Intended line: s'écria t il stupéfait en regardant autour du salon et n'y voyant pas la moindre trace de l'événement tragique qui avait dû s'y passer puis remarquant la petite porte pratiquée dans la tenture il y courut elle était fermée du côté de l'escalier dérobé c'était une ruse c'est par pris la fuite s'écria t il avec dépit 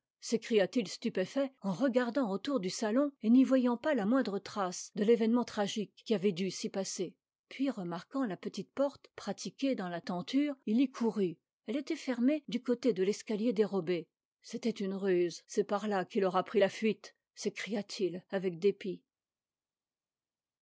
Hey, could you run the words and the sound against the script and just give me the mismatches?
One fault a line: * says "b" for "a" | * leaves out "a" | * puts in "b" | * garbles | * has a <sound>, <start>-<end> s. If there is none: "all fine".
* puts in "là qu'il aura"